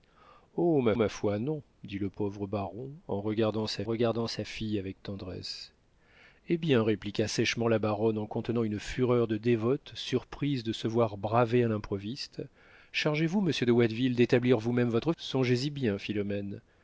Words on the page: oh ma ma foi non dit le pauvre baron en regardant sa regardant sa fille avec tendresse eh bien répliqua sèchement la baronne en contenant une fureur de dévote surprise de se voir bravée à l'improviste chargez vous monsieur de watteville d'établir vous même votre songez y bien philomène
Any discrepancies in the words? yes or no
no